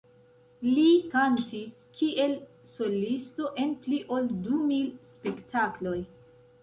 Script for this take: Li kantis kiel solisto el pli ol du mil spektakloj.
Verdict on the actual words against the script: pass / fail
fail